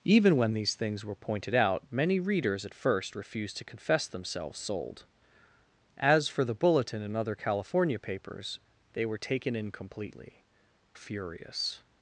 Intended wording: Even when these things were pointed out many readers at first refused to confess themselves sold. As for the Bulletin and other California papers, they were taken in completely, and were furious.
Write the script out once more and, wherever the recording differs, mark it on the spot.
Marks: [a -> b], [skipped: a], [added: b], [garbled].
Even when these things were pointed out many readers at first refused to confess themselves sold. As for the Bulletin and other California papers, they were taken in completely, [skipped: and were] furious.